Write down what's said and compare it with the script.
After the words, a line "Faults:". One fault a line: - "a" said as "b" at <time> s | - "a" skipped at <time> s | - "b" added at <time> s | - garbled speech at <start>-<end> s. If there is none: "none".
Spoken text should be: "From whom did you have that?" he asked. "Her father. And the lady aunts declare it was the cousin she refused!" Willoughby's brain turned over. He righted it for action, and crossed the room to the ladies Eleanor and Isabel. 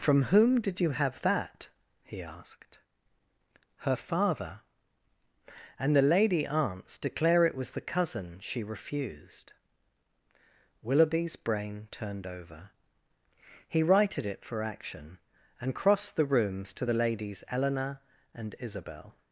"From whom did you have that?" he asked. "Her father. And the lady aunts declare it was the cousin she refused!" Willoughby's brain turned over. He righted it for action, and crossed the rooms to the ladies Eleanor and Isabel.
Faults:
- "room" said as "rooms" at 16.2 s